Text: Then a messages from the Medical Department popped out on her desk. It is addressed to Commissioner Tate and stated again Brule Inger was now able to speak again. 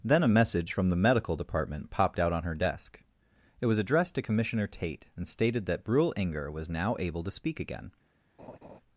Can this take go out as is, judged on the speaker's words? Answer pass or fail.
fail